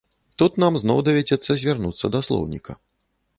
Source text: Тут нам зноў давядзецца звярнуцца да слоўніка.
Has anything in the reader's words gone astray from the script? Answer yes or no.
no